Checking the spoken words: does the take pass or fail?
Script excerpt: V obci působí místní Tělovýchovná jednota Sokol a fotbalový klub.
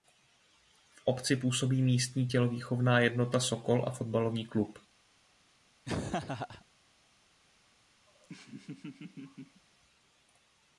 pass